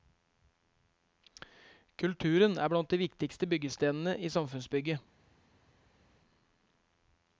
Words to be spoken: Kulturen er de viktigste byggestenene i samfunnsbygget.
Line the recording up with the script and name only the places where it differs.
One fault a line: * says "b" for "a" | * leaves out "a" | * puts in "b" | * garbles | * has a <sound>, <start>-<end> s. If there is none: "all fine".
* puts in "blant"